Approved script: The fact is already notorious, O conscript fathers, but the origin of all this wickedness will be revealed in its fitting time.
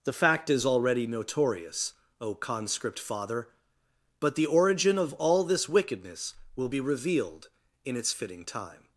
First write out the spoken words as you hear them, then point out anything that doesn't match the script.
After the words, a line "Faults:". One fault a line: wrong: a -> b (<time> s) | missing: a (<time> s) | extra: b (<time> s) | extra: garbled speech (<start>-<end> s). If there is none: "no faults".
The fact is already notorious, O conscript father, but the origin of all this wickedness will be revealed in its fitting time.
Faults:
wrong: fathers -> father (3.0 s)